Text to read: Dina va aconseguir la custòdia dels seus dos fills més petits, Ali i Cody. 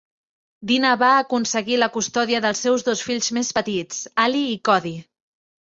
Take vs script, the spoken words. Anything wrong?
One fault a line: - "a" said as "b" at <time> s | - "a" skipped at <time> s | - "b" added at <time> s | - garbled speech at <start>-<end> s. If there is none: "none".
none